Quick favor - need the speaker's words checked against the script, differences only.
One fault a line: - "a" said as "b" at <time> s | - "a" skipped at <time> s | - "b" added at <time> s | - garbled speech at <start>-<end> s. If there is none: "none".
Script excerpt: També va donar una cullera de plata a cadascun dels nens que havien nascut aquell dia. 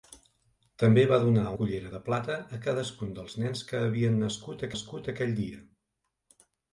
- "una" skipped at 1.4 s
- "nascut" added at 4.7 s